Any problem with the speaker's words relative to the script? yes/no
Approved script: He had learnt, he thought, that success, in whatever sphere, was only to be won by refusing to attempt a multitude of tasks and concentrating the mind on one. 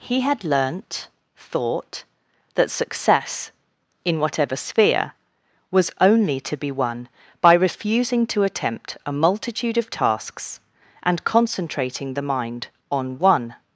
yes